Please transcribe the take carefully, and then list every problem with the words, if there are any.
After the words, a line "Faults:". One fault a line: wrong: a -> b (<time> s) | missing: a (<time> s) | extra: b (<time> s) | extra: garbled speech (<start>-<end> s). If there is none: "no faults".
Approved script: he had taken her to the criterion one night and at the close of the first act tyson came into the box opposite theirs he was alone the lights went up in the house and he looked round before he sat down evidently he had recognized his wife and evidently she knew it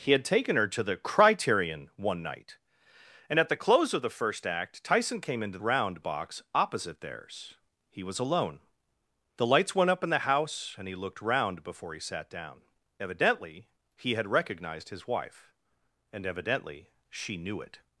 he had taken her to the criterion one night and at the close of the first act tyson came into round box opposite theirs he was alone the lights went up in the house and he looked round before he sat down evidently he had recognized his wife and evidently she knew it
Faults:
wrong: the -> round (5.6 s)